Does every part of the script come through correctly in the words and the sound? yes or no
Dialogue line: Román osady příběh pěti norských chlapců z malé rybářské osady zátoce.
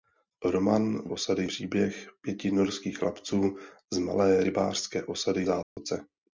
no